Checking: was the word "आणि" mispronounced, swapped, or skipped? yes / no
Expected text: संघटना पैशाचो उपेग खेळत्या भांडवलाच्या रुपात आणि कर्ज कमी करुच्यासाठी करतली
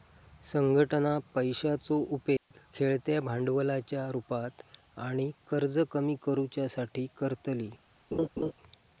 no